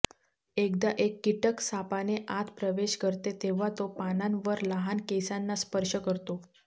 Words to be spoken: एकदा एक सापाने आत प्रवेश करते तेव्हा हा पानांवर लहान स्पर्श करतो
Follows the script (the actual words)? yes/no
no